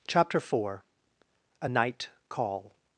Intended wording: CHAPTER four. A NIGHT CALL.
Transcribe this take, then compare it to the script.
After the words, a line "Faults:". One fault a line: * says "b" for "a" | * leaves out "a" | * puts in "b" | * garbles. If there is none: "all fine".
CHAPTER four. A NIGHT CALL.
Faults:
all fine